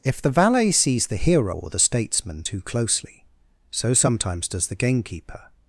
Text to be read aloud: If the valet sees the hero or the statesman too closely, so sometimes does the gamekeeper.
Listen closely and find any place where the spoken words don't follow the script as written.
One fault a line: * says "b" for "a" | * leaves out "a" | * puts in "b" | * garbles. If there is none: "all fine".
all fine